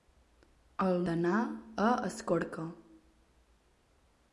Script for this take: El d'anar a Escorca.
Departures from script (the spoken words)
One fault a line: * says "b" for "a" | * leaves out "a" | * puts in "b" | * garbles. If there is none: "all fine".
all fine